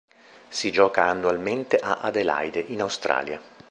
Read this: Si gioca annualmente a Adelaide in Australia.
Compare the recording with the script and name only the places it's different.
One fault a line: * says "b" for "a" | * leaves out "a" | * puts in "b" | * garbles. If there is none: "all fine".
all fine